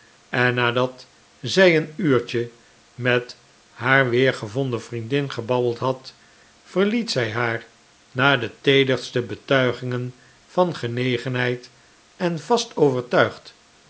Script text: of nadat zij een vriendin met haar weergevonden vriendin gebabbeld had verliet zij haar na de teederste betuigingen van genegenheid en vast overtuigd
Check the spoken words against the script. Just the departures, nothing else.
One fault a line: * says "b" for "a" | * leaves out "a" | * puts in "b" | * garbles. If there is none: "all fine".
* says "en" for "of"
* says "uurtje" for "vriendin"